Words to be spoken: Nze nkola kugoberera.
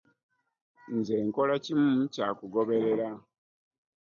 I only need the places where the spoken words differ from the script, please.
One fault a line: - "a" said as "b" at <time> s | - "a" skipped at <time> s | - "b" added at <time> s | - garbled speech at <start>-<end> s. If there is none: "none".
- "kimu kya" added at 1.6 s